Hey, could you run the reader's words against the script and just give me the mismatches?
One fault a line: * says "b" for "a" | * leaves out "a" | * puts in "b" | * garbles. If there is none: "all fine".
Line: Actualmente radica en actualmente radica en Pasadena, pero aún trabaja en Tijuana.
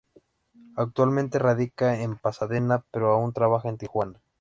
* leaves out "actualmente radica en"